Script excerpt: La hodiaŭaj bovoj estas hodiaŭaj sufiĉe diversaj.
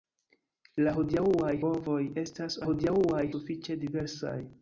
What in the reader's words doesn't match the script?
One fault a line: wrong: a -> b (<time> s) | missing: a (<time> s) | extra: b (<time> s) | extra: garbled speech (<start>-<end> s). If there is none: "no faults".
no faults